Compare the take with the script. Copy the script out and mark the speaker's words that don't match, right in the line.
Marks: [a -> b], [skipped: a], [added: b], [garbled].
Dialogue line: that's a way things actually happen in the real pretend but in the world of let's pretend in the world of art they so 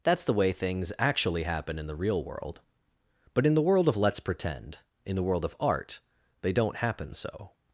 that's [a -> the] way things actually happen in the real [pretend -> world] but in the world of let's pretend in the world of art they [added: don't happen] so